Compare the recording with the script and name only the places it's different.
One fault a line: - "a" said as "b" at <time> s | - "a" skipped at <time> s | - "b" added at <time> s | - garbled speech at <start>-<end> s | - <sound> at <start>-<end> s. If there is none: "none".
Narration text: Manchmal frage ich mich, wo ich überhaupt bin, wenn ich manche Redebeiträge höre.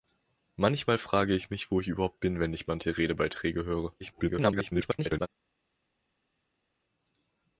- garbled speech at 4.0-5.3 s